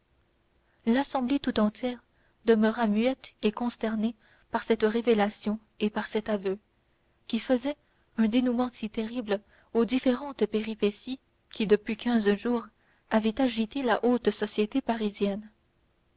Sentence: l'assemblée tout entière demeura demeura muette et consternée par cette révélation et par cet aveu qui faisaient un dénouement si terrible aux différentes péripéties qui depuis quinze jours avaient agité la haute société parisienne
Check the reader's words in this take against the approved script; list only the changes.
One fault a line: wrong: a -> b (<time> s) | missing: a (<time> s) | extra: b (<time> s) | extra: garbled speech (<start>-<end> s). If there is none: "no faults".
missing: demeura (2.9 s)